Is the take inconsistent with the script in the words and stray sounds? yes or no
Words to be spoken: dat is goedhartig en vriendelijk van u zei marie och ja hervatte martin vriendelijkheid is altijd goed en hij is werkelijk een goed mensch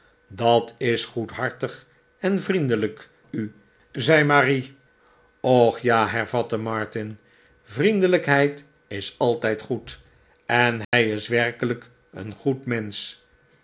yes